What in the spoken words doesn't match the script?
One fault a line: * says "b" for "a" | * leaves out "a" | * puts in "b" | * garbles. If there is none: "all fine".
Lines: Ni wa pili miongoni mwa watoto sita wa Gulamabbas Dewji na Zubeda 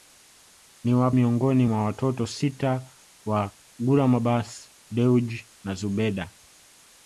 * leaves out "pili"